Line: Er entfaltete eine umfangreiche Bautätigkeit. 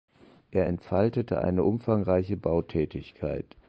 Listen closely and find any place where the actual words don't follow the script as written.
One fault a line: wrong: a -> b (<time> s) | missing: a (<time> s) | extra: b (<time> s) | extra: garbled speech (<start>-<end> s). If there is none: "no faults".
no faults